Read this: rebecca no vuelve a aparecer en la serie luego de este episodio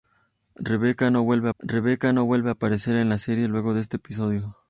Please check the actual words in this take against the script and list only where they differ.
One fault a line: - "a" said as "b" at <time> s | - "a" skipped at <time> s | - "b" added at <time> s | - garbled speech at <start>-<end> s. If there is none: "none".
- "rebecca no vuelve" added at 1.6 s